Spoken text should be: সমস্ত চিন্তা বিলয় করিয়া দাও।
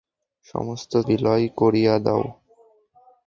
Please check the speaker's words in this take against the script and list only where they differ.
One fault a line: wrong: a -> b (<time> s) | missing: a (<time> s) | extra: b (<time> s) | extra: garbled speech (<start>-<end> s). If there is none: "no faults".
missing: চিন্তা (0.9 s)